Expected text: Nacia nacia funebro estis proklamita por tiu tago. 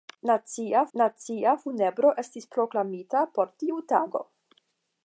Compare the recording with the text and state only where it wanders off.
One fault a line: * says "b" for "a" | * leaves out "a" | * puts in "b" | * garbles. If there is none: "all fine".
all fine